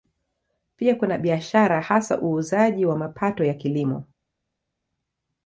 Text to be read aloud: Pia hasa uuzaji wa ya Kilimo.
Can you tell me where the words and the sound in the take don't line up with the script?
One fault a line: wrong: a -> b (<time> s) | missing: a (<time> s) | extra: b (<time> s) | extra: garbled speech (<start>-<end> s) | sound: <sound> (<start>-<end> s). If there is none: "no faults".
extra: kuna biashara (0.9 s)
extra: mapato (3.0 s)